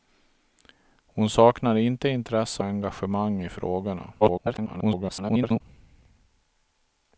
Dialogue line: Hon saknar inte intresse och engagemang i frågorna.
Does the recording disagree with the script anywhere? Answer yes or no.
yes